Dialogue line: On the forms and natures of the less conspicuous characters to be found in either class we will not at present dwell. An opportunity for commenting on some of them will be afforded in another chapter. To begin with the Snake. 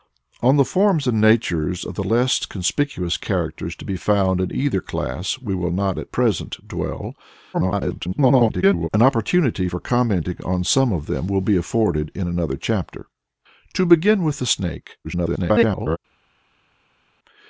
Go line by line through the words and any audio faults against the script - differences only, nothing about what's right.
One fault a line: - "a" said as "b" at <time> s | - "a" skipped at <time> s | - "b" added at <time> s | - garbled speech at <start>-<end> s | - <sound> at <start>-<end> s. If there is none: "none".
- garbled speech at 7.5-8.9 s
- garbled speech at 15.0-16.0 s